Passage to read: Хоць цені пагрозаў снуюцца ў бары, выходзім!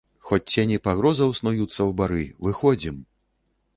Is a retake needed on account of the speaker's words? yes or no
no